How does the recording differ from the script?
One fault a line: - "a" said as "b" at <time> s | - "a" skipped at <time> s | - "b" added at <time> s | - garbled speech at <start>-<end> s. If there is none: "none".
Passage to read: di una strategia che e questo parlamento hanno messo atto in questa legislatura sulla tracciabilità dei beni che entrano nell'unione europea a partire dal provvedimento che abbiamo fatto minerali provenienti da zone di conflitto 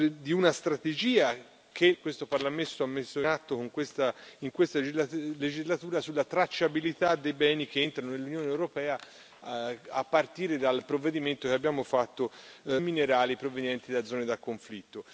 none